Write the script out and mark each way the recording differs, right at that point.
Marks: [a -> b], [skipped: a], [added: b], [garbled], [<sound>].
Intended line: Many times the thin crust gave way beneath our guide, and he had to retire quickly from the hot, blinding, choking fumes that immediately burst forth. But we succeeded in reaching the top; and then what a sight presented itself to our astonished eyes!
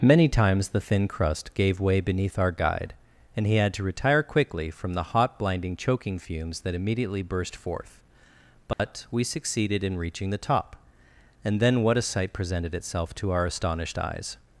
Many times the thin crust gave way beneath our guide, and he had to retire quickly from the hot, blinding, choking fumes that immediately burst forth. But [dropout] we succeeded in reaching the top; and then what a sight presented itself to our astonished eyes!